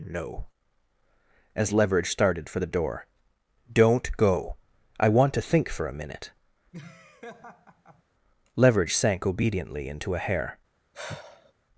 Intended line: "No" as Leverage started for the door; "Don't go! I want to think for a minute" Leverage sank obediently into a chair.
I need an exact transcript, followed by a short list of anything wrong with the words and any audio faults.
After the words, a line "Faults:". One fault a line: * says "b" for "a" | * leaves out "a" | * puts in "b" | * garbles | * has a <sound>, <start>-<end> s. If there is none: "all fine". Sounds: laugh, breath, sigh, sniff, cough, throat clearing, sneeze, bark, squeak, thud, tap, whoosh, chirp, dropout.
"No" as Leverage started for the door; "Don't go! I want to think for a minute" Leverage sank obediently into a hair.
Faults:
* has a laugh, 6.7-8.0 s
* says "hair" for "chair"
* has a sigh, 10.9-11.5 s